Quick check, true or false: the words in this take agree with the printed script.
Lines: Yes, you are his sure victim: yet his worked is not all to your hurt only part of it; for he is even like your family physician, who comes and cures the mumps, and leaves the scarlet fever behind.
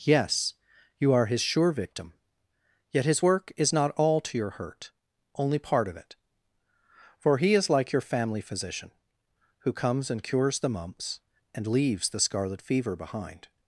false